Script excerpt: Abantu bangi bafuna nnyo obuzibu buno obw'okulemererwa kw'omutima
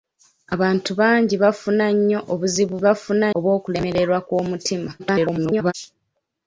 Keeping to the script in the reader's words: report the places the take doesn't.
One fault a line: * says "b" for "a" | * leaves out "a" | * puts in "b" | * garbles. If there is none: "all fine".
* says "bafuna" for "buno"
* garbles